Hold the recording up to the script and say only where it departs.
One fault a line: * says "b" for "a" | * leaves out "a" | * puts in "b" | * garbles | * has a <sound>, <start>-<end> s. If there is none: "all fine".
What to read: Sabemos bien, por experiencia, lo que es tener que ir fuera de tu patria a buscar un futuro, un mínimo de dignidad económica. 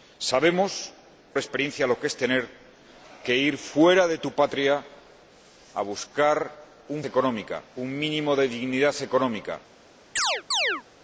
* leaves out "bien por"
* says "económica" for "futuro"
* has a chirp, 10.2-10.8 s